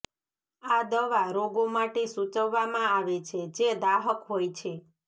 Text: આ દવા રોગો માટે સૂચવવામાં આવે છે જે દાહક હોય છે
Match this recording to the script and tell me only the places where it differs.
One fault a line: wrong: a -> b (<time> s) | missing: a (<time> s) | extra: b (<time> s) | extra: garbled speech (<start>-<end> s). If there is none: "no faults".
no faults